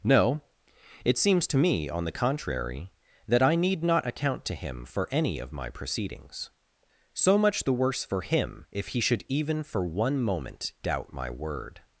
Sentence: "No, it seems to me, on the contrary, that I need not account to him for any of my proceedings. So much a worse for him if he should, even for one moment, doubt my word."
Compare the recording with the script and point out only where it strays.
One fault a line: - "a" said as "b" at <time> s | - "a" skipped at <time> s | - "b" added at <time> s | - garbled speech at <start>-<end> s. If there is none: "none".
- "a" said as "the" at 7.6 s